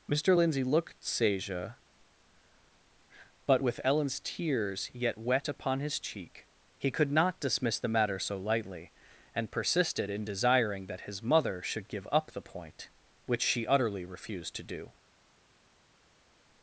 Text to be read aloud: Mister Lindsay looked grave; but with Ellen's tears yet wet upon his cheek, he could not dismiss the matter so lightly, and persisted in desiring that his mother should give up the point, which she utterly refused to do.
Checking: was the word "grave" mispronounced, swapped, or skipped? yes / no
yes